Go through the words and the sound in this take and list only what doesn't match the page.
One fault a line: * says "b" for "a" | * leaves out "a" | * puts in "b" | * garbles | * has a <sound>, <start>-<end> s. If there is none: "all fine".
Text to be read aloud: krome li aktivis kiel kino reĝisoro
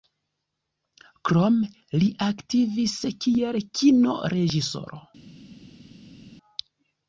all fine